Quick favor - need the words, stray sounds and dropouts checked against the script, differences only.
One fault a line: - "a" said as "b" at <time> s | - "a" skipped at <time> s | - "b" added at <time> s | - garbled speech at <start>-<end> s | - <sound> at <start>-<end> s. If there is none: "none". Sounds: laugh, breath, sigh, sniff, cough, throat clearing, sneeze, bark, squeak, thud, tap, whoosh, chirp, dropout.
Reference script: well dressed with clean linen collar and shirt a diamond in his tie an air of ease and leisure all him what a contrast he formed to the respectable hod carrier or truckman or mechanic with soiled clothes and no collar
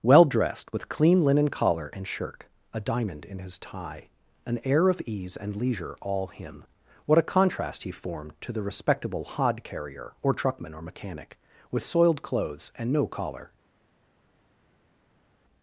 none